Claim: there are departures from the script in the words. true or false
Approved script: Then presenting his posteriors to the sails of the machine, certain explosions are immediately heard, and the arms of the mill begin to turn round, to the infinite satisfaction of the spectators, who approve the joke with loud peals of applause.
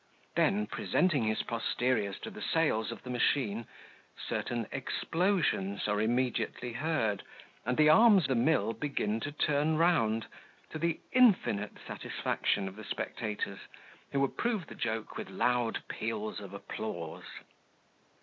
true